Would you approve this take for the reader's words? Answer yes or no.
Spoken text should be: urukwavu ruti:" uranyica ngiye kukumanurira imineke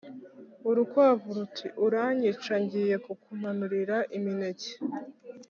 yes